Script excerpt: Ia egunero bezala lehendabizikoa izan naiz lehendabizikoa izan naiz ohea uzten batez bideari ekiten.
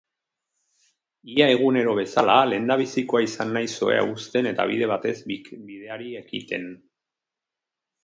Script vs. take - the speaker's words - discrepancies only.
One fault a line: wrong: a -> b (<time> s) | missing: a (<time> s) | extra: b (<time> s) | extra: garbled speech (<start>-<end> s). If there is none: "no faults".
wrong: lehendabizikoa izan naiz ohea uzten -> ohea uzten eta bide (3.9 s)